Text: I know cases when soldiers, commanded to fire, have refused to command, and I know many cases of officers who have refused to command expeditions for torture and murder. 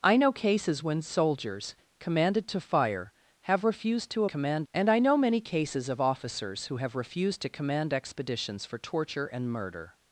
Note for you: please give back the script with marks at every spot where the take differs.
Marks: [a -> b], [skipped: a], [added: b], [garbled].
I know cases when soldiers, commanded to fire, have refused to command, and I know many cases of officers who have refused to command expeditions for torture and murder.